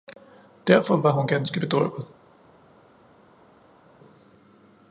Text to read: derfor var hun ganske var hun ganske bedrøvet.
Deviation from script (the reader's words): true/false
true